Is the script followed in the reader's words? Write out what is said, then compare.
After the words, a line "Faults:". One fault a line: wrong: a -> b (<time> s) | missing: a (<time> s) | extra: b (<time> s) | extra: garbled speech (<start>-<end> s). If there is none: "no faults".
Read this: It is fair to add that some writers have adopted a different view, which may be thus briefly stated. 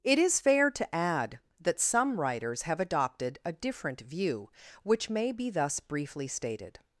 It is fair to add that some writers have adopted a different view, which may be thus briefly stated.
Faults:
no faults